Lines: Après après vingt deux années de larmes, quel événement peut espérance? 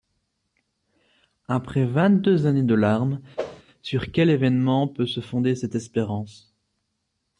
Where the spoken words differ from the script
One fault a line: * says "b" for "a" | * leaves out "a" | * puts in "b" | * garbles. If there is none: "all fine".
* leaves out "après"
* puts in "sur"
* puts in "se fonder cette"